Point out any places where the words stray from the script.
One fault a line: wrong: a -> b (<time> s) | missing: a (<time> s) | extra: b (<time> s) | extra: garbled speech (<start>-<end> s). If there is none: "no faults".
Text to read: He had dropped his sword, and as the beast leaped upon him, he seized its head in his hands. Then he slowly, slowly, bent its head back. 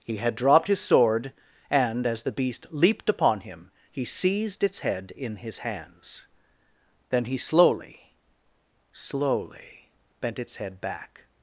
no faults